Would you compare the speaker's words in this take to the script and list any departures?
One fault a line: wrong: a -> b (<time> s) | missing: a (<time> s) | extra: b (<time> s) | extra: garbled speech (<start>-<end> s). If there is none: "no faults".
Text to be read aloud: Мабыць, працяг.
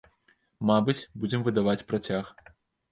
extra: будзем выдаваць (1.2 s)